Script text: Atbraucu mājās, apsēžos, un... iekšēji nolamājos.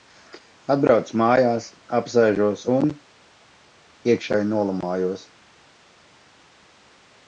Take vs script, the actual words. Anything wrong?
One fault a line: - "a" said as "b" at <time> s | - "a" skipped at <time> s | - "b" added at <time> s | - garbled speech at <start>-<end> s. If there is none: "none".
none